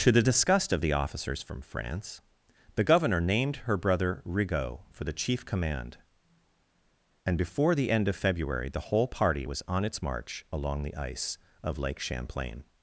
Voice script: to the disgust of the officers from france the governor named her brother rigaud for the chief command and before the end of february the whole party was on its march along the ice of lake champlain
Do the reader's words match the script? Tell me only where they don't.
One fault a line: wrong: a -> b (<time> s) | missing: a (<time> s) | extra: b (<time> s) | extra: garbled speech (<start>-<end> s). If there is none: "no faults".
no faults